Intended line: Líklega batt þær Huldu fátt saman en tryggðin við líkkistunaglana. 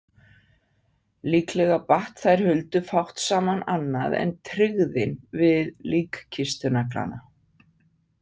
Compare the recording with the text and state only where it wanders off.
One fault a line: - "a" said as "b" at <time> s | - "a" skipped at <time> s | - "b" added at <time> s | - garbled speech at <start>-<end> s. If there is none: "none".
- "annað" added at 3.7 s